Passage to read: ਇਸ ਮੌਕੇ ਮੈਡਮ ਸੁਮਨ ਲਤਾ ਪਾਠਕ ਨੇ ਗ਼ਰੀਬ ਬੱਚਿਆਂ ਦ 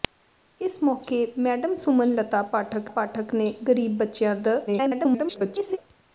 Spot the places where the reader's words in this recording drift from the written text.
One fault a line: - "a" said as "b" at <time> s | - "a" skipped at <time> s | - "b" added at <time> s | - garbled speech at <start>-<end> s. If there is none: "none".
- "ਪਾਠਕ" added at 2.9 s
- garbled speech at 4.7-5.8 s